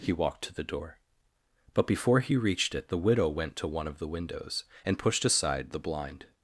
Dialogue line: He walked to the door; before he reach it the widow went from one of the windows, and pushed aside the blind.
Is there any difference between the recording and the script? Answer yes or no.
yes